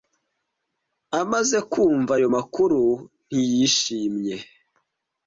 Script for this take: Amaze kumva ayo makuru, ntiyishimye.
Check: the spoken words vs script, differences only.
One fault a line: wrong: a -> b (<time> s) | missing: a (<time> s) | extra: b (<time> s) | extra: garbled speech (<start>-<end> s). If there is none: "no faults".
no faults